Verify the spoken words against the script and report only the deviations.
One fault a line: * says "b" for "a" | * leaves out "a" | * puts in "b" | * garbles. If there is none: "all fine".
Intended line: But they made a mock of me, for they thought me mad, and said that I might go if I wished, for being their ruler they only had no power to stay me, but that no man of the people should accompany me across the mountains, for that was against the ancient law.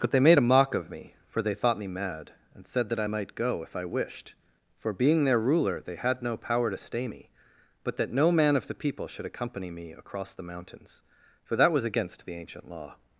* leaves out "only"